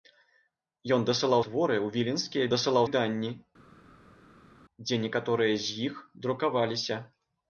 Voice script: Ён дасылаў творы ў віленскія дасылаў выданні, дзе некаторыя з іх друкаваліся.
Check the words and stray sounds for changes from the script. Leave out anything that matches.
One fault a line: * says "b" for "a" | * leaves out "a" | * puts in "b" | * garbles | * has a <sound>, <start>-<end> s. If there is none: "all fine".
all fine